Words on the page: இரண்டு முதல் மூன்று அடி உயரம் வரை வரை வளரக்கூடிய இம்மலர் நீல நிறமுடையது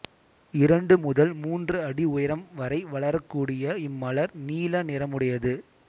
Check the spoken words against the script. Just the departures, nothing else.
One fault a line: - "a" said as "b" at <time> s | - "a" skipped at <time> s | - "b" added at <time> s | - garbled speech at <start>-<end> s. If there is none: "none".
- "வரை" skipped at 2.8 s